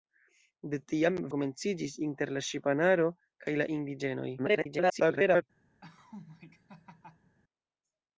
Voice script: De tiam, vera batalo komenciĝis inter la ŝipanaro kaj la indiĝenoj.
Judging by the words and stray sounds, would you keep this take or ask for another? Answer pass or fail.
fail